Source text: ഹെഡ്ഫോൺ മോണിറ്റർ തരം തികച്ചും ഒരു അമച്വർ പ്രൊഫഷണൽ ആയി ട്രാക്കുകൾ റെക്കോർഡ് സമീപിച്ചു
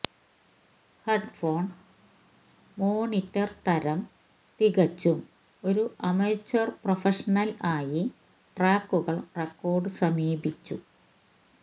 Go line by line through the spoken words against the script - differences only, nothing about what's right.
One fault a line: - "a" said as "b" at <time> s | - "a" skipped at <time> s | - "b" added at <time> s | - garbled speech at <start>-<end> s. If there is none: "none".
none